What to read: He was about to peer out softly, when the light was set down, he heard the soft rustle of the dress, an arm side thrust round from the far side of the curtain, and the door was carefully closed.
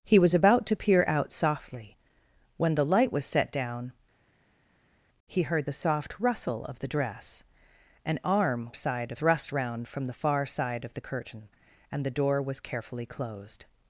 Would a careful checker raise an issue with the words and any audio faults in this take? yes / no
no